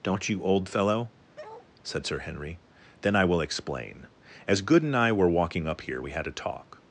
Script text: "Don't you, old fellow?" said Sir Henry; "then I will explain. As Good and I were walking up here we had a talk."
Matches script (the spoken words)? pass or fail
pass